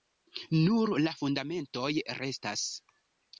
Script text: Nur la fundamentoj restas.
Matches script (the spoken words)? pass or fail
pass